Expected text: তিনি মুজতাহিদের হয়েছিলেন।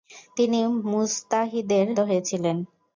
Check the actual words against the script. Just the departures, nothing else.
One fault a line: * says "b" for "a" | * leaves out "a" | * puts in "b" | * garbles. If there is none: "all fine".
all fine